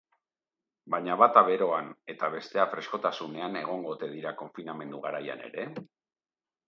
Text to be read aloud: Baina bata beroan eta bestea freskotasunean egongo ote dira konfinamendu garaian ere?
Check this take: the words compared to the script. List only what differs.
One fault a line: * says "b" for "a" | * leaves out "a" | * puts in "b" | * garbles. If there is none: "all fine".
all fine